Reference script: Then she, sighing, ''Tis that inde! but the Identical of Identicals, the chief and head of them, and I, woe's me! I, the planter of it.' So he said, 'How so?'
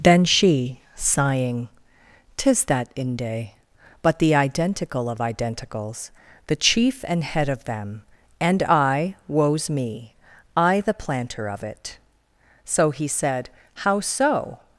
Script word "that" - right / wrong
right